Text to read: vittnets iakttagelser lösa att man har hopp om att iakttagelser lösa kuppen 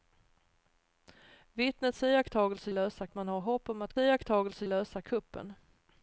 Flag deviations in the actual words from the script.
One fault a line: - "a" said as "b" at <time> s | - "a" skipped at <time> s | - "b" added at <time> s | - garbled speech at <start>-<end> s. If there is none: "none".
none